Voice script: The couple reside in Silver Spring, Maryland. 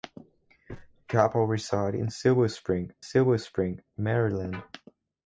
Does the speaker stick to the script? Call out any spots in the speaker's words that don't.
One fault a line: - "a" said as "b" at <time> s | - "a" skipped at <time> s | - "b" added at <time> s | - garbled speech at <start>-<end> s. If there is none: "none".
- "Silver Spring" added at 3.0 s